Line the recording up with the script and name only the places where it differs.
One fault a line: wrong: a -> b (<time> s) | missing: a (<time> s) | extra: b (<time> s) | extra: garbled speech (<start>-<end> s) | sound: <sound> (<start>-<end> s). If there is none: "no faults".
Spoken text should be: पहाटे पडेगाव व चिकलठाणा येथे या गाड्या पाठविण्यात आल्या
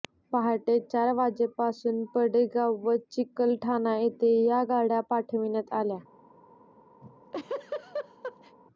extra: चार वाजेपासून (0.8 s)
sound: laugh (7.0-8.6 s)